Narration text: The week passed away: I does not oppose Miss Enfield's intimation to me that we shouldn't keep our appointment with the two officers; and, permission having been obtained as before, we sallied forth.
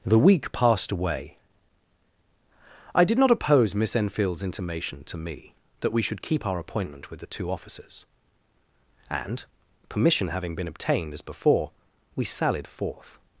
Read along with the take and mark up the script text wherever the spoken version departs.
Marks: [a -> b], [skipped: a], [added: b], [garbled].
The week passed away: I [does -> did] not oppose Miss Enfield's intimation to me that we [shouldn't -> should] keep our appointment with the two officers; and, permission having been obtained as before, we sallied forth.